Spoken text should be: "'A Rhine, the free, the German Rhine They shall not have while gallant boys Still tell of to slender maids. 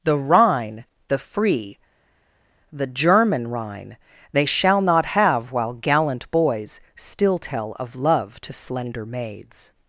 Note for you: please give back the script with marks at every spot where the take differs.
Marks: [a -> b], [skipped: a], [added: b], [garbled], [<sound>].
["'A -> The] Rhine, the free, the German Rhine They shall not have while gallant boys Still tell of [added: love] to slender maids.